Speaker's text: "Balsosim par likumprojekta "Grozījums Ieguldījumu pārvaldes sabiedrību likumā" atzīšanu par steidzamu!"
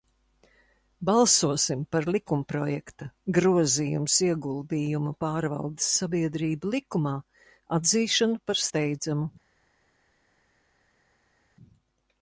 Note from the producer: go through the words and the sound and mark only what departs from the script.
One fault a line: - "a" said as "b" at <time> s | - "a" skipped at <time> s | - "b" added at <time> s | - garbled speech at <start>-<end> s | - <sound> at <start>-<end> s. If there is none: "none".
none